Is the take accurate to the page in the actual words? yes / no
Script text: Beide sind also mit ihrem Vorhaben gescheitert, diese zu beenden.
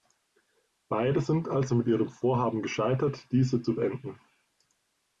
yes